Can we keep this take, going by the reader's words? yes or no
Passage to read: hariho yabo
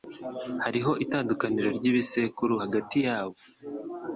no